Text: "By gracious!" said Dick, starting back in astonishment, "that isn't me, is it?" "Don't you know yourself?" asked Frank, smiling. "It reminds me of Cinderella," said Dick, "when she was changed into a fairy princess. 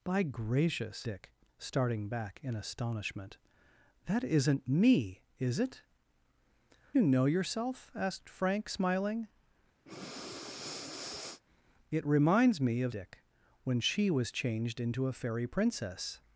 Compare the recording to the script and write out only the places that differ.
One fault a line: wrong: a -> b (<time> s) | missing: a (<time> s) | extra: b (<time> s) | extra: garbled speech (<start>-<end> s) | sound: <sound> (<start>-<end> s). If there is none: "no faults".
missing: said (1.1 s)
missing: Don't (5.8 s)
sound: breath (9.9-11.4 s)
missing: Cinderella said (12.9 s)